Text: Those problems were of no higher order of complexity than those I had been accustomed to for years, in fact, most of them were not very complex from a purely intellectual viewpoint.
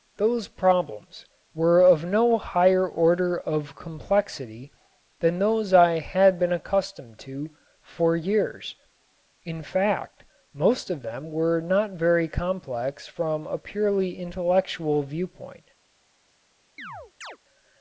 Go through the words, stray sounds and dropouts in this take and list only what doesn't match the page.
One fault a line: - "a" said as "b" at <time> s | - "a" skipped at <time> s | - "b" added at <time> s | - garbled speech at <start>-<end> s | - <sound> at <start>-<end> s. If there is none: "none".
- chirp at 16.8-17.4 s